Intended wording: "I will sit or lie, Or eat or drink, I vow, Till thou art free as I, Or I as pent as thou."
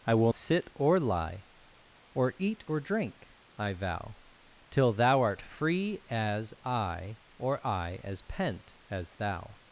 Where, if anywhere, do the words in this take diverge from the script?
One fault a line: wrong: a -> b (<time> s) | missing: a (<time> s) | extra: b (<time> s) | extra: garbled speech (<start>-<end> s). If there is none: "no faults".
no faults